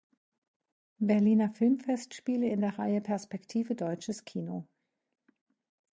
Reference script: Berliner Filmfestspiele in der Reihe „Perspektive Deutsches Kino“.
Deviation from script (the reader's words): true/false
false